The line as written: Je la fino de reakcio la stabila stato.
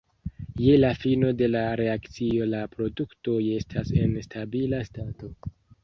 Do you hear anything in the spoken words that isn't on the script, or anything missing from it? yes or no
yes